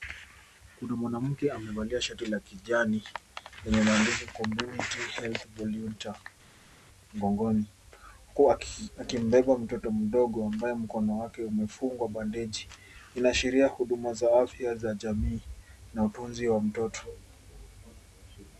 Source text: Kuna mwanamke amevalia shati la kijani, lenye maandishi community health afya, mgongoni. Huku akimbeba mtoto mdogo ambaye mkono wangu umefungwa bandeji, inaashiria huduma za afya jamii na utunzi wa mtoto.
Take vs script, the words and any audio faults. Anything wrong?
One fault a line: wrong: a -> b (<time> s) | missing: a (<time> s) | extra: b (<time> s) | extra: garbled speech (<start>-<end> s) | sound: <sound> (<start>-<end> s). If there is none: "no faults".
wrong: afya -> volunteer (5.6 s)
wrong: wangu -> wake (11.2 s)
extra: za (14.7 s)